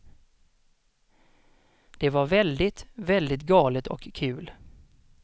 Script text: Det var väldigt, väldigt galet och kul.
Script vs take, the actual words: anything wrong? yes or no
no